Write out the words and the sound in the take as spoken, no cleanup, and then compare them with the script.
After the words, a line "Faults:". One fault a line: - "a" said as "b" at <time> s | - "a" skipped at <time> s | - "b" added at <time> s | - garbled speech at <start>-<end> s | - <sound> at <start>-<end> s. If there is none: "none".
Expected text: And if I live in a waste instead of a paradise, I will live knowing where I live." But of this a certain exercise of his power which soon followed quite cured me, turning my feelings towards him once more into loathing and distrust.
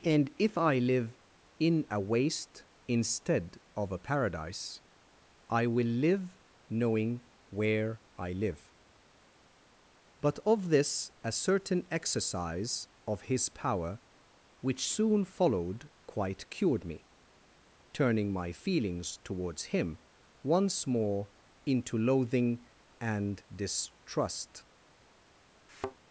And if I live in a waste instead of a paradise, I will live knowing where I live." But of this a certain exercise of his power which soon followed quite cured me, turning my feelings towards him once more into loathing and distrust.
Faults:
- thud at 25.7-26.0 s